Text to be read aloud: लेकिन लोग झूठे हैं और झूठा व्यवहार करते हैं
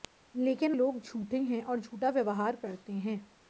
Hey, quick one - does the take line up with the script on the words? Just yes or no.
yes